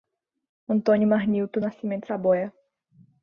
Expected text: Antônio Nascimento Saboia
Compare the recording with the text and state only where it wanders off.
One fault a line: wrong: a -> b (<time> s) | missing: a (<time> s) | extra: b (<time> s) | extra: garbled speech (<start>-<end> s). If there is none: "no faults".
extra: Marnilto (1.1 s)